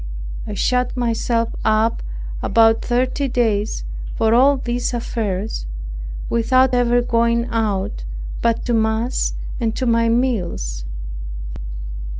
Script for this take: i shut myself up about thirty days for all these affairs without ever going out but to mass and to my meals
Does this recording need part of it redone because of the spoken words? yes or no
no